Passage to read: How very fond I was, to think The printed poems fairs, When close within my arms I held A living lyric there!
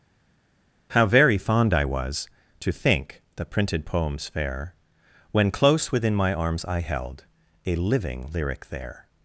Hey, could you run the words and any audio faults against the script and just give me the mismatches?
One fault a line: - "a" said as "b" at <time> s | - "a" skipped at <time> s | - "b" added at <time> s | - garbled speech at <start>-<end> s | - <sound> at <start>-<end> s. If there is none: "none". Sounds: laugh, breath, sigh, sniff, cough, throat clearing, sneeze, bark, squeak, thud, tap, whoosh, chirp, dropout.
- "fairs" said as "fair" at 4.3 s